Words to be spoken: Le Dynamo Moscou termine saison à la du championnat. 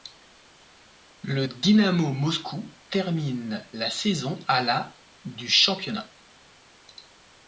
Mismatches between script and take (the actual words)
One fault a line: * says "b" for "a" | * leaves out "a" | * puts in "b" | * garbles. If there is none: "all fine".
* puts in "la"